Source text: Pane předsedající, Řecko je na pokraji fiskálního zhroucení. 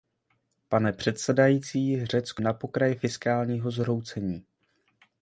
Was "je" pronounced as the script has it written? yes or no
no